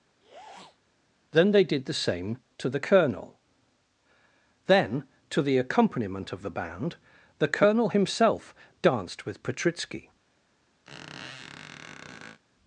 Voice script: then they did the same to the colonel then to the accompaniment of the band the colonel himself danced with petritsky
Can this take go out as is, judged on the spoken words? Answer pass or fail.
pass